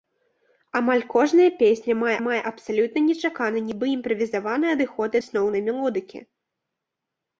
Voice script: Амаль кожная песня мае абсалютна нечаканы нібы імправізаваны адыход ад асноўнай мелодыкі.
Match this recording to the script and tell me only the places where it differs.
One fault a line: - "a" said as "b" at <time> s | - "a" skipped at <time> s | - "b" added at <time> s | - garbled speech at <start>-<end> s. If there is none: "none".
- "мае" added at 2.3 s
- "ад" skipped at 5.1 s